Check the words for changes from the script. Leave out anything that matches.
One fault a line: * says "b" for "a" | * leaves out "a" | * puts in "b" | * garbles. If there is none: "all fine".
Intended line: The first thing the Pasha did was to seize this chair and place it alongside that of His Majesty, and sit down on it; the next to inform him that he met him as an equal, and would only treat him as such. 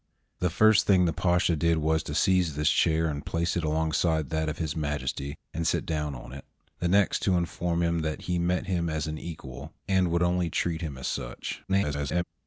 * garbles